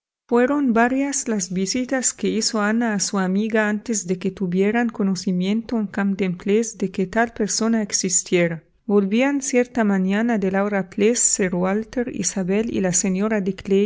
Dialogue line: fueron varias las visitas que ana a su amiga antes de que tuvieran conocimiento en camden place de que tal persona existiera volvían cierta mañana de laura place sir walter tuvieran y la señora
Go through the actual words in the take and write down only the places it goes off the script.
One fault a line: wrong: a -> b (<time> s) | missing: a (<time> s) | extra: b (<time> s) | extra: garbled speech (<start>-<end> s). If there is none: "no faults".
extra: hizo (2.3 s)
wrong: tuvieran -> isabel (12.2 s)